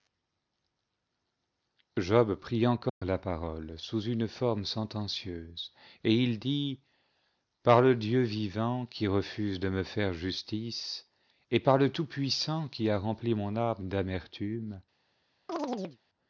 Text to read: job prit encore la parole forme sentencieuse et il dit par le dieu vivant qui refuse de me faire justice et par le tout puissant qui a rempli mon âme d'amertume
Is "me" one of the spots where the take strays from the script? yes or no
no